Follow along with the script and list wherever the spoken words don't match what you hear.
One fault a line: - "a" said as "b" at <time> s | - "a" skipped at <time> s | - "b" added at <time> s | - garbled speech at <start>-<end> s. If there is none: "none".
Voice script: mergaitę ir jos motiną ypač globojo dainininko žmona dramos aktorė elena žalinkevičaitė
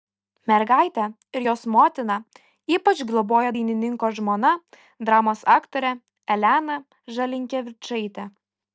none